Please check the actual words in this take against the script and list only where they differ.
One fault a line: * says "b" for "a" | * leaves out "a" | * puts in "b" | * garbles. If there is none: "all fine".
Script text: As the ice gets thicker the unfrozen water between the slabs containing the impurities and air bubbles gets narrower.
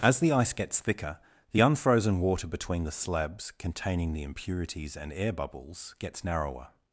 all fine